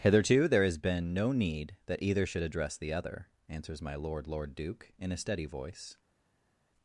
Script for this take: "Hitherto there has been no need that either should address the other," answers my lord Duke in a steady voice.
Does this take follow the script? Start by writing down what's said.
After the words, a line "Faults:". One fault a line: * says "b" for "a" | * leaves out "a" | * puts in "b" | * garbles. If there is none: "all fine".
"Hitherto there has been no need that either should address the other," answers my lord lord Duke in a steady voice.
Faults:
* puts in "lord"